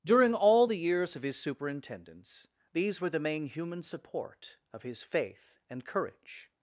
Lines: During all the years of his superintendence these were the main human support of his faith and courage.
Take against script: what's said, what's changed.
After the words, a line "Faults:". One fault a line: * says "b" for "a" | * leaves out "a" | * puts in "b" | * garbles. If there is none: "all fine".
During all the years of his superintendence these were the main human support of his faith and courage.
Faults:
all fine